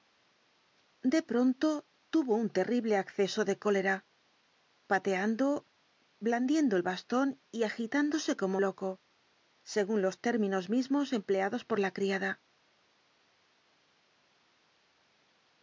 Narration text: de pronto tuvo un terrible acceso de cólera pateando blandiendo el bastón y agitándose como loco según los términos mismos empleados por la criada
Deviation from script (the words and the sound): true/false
false